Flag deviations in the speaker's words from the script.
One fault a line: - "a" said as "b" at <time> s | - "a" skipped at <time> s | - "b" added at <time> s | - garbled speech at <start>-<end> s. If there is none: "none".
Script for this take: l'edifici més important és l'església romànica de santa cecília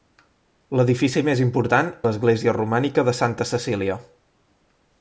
- "és" skipped at 1.9 s